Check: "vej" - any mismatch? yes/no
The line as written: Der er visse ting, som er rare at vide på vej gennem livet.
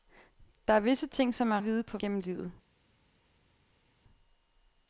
yes